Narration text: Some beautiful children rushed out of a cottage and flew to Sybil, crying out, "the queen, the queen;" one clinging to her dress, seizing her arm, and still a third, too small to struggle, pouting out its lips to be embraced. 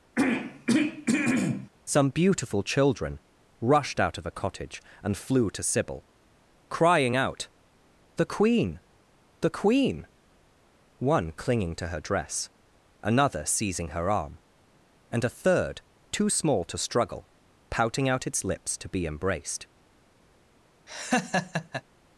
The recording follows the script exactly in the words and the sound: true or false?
false